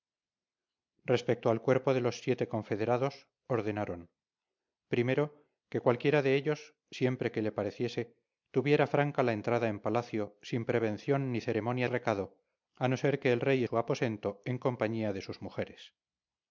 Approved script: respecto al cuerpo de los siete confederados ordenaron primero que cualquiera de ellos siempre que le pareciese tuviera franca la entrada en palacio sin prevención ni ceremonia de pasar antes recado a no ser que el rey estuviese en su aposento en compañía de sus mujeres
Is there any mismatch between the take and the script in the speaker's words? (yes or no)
yes